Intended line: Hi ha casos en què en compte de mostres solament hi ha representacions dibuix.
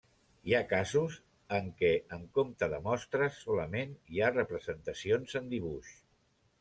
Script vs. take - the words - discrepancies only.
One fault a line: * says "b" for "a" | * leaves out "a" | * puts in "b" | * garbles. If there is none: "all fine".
* puts in "en"